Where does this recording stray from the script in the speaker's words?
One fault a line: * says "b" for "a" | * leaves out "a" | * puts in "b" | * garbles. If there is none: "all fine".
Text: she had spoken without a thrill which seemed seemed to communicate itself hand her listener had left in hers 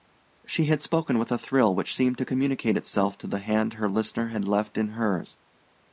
* says "with" for "without"
* leaves out "seemed"
* puts in "to the"